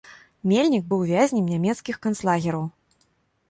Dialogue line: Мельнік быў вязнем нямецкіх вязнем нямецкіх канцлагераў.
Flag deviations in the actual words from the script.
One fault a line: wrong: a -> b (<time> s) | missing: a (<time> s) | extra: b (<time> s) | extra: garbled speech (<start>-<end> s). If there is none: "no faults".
missing: вязнем нямецкіх (2.0 s)